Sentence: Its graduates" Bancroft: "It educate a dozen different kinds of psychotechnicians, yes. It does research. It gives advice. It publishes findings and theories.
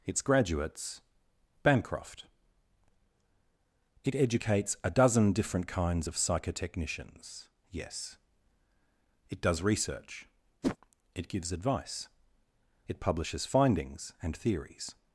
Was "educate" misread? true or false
true